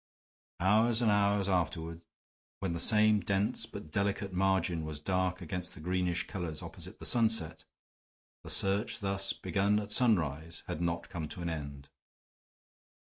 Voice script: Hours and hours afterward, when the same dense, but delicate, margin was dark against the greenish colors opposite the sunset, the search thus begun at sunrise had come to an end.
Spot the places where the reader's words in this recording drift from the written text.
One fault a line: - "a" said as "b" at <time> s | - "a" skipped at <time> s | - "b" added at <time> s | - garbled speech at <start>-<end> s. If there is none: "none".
- "not" added at 10.8 s